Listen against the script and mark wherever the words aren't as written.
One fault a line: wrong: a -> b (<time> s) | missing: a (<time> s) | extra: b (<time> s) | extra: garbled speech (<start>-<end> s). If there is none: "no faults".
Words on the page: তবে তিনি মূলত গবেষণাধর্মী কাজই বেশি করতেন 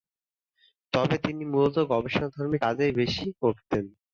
no faults